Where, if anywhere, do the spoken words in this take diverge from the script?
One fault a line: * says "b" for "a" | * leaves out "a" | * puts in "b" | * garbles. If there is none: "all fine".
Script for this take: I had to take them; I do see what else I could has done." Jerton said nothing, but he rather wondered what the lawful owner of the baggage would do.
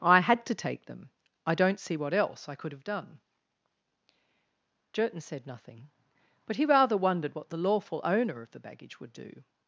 * says "don't" for "do"
* says "have" for "has"